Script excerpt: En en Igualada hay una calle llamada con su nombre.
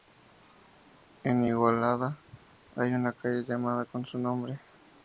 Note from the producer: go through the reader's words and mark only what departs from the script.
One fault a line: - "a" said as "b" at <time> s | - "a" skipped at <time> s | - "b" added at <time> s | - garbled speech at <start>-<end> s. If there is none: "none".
- "en" skipped at 1.4 s